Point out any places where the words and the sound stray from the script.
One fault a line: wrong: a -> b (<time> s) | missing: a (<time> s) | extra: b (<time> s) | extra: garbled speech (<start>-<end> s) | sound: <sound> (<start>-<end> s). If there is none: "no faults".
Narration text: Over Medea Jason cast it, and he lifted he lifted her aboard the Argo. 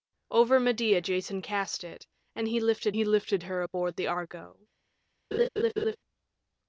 sound: laugh (5.3-6.0 s)